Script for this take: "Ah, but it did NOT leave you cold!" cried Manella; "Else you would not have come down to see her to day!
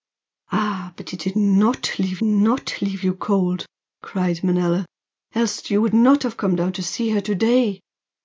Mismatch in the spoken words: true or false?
true